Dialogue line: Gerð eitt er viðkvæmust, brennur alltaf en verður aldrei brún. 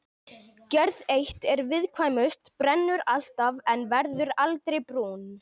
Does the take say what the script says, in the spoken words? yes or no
yes